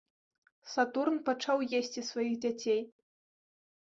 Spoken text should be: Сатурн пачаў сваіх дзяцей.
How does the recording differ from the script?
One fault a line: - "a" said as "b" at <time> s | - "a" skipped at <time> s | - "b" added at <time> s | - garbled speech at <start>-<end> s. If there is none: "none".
- "есці" added at 1.8 s